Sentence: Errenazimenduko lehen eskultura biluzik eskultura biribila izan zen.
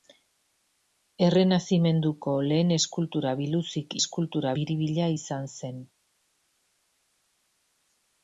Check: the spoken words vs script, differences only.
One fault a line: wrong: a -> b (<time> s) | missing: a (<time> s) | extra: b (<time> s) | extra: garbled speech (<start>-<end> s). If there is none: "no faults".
no faults